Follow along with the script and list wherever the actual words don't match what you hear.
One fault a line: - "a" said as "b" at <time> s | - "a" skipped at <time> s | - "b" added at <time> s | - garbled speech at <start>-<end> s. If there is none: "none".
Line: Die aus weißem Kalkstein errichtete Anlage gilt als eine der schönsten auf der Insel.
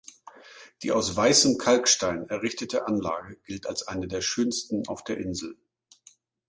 none